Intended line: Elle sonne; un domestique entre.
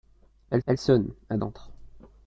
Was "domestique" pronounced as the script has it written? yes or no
no